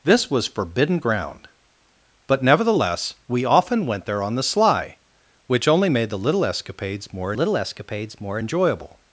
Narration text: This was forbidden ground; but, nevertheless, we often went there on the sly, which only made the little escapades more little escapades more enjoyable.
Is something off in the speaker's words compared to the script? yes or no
no